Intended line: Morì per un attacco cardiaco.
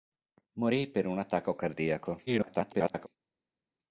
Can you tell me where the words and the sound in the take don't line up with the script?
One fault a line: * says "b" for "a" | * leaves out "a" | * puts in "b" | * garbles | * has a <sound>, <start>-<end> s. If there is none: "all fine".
* garbles